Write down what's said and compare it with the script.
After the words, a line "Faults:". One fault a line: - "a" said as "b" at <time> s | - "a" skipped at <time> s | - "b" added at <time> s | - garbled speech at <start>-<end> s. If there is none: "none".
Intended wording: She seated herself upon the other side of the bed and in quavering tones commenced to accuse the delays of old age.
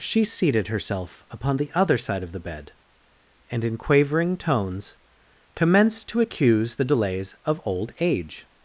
She seated herself upon the other side of the bed and in quavering tones commenced to accuse the delays of old age.
Faults:
none